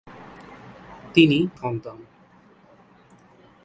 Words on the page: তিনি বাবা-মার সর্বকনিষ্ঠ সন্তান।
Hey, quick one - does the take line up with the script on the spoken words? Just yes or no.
no